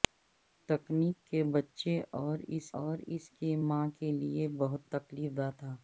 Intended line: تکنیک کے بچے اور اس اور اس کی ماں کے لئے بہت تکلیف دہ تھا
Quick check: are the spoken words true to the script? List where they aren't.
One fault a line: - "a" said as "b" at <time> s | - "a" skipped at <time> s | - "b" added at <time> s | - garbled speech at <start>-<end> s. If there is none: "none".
none